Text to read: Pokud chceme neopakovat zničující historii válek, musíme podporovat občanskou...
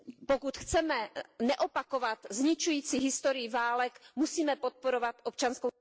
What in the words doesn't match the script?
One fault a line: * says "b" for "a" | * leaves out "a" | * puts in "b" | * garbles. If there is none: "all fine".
all fine